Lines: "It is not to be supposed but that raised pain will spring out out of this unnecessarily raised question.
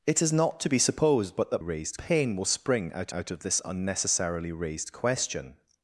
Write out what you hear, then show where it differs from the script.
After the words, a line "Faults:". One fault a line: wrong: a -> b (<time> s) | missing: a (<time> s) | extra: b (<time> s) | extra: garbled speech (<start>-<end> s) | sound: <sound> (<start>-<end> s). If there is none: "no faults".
"It is not to be supposed but that raised pain will spring out out of this unnecessarily raised question.
Faults:
no faults